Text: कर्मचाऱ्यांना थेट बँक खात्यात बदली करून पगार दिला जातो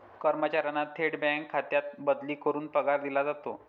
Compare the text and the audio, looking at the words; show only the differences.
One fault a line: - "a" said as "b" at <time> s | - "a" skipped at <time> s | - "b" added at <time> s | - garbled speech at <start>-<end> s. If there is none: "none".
none